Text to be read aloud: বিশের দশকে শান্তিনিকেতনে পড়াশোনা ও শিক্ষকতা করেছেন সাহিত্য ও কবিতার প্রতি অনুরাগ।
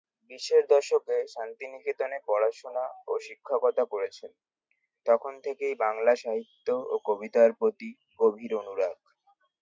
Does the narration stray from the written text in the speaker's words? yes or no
yes